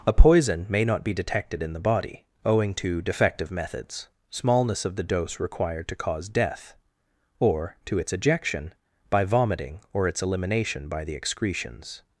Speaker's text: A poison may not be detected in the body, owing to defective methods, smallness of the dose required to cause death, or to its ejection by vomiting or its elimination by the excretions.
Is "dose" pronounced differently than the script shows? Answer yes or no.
no